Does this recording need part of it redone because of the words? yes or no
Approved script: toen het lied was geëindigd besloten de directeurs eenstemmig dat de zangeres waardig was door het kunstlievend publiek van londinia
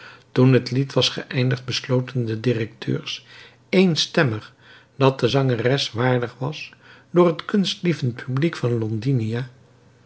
no